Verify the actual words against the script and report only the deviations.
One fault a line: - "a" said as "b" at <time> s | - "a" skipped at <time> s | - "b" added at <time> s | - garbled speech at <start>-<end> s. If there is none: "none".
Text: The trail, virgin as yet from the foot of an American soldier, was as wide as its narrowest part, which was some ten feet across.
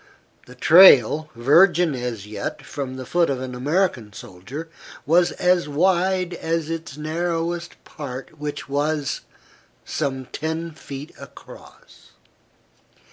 none